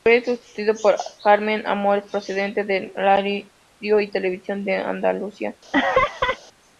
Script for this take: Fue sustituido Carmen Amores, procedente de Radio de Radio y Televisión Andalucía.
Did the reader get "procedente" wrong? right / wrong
right